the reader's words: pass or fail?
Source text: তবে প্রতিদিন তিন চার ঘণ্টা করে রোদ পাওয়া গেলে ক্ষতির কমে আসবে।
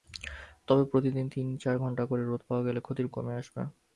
pass